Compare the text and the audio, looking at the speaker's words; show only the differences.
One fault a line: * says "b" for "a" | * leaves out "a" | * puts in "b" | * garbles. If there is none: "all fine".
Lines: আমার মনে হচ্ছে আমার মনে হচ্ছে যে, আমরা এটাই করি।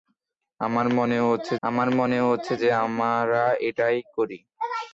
all fine